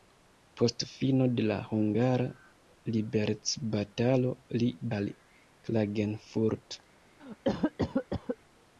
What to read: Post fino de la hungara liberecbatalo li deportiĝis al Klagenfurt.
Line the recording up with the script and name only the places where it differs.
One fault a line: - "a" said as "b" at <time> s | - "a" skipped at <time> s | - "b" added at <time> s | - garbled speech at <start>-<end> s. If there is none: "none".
- "deportiĝis" skipped at 4.7 s